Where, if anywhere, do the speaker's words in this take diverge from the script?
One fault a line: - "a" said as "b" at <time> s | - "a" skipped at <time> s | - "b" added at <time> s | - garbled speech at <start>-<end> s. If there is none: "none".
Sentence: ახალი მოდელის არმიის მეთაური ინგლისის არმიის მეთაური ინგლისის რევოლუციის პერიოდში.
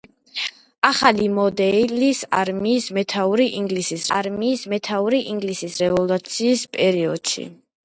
none